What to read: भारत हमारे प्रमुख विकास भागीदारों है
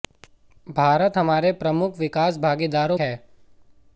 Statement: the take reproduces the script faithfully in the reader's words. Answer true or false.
true